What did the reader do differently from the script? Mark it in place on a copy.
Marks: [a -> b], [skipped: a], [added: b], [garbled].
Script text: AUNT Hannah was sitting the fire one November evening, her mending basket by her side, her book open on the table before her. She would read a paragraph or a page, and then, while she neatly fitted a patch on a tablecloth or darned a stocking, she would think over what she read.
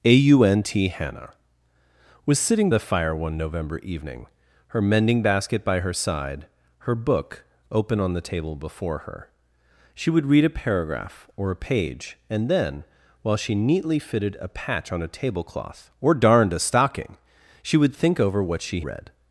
AUNT Hannah was sitting the fire one November evening, her mending basket by her side, her book open on the table before her. She would read a paragraph or a page, and then, while she neatly fitted a patch on a tablecloth or darned a stocking, she would think over what she read.